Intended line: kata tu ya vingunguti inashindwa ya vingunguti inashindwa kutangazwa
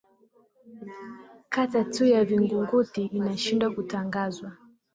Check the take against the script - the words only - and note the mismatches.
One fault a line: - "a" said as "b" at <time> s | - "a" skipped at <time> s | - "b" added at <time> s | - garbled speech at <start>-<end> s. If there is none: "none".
- "ya vingunguti inashindwa" skipped at 3.7 s